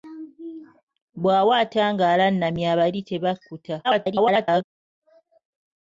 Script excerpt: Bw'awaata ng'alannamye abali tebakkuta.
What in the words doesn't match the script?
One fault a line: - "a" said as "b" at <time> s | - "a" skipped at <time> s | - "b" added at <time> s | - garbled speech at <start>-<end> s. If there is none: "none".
- garbled speech at 3.8-4.6 s